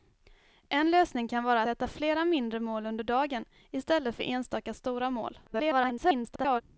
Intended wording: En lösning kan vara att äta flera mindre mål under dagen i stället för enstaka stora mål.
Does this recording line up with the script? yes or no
no